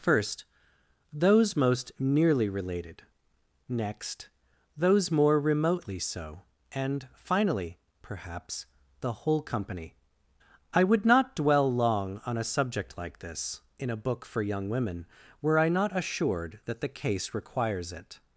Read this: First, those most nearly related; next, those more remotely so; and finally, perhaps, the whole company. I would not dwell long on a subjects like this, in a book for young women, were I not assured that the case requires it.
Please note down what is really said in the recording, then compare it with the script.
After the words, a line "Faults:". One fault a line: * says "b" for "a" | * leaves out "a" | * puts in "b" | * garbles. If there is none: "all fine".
First, those most nearly related; next, those more remotely so; and finally, perhaps, the whole company. I would not dwell long on a subject like this, in a book for young women, were I not assured that the case requires it.
Faults:
* says "subject" for "subjects"